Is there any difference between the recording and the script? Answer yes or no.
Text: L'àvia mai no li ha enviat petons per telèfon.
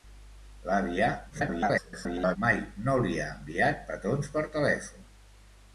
yes